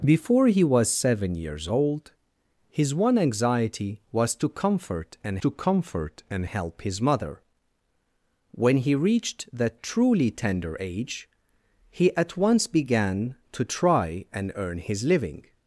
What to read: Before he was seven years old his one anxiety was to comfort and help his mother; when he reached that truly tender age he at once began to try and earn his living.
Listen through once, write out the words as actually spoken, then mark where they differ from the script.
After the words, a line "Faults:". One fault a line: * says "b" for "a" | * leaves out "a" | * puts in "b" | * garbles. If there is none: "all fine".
Before he was seven years old his one anxiety was to comfort and to comfort and help his mother; when he reached that truly tender age he at once began to try and earn his living.
Faults:
* puts in "to comfort and"